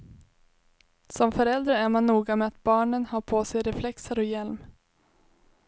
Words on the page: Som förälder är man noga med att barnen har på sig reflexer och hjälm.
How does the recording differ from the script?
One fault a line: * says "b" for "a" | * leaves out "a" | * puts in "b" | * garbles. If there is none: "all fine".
all fine